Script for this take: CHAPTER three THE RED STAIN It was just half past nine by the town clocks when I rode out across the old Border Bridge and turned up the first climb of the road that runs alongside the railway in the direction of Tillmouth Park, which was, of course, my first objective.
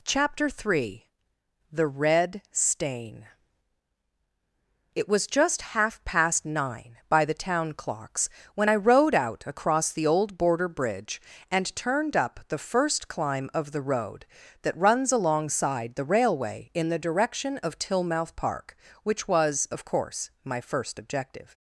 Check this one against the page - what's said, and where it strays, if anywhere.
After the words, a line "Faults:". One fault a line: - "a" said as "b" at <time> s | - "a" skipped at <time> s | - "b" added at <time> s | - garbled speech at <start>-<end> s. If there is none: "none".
CHAPTER three THE RED STAIN It was just half past nine by the town clocks when I rode out across the old Border Bridge and turned up the first climb of the road that runs alongside the railway in the direction of Tillmouth Park, which was, of course, my first objective.
Faults:
none